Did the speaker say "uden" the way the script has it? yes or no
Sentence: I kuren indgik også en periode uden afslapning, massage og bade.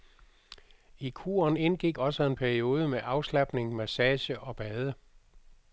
no